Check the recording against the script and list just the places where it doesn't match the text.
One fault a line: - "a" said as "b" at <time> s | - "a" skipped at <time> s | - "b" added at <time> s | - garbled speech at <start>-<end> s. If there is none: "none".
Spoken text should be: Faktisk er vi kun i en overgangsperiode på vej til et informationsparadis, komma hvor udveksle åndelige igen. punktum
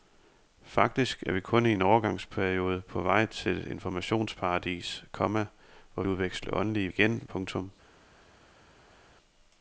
none